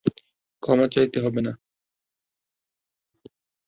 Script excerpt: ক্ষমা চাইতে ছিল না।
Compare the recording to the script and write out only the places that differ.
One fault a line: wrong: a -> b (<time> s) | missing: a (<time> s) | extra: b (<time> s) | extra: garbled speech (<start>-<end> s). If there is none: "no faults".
wrong: ছিল -> হবে (1.2 s)